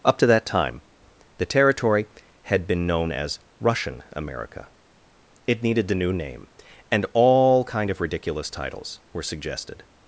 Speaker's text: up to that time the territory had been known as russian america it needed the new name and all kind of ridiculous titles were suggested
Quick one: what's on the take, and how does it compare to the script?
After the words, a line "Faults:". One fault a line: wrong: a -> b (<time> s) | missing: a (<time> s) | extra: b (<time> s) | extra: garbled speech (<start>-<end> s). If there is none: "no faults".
up to that time the territory had been known as russian america it needed the new name and all kind of ridiculous titles were suggested
Faults:
no faults